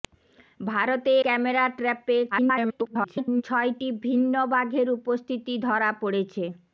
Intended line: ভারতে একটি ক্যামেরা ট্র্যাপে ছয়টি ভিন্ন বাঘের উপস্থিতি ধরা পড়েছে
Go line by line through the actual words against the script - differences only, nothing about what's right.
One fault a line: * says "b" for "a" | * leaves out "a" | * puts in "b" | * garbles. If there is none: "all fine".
* leaves out "একটি"
* garbles